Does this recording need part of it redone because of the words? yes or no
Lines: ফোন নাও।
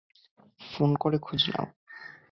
yes